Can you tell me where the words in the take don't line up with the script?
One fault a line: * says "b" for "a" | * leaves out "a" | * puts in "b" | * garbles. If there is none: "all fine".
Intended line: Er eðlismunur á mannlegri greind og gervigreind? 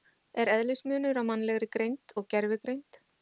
all fine